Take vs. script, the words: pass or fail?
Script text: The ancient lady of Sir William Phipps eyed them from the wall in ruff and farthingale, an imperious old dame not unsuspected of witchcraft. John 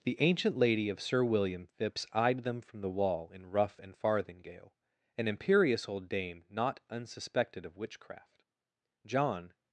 pass